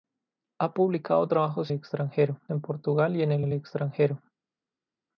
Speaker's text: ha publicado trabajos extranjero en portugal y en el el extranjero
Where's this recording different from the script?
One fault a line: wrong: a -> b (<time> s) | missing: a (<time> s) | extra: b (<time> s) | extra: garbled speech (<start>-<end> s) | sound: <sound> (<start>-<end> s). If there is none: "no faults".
no faults